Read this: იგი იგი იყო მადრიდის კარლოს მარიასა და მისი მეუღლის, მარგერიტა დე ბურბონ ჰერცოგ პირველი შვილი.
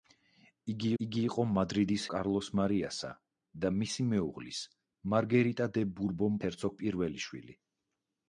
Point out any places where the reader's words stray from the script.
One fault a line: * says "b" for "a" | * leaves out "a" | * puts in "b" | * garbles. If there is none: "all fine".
all fine